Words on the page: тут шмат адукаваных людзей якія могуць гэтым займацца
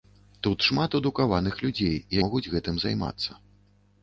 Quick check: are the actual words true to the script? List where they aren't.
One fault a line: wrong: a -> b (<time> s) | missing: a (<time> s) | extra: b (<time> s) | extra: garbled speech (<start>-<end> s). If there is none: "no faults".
missing: якія (1.9 s)